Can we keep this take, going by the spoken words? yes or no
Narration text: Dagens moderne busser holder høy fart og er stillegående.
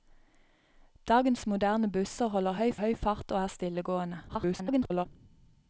no